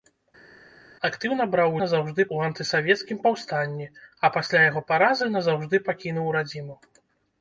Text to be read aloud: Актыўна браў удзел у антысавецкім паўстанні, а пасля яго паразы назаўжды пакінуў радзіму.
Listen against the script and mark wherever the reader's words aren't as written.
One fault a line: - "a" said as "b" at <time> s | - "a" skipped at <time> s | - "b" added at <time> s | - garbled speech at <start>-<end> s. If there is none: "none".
- "удзел" said as "назаўжды" at 1.8 s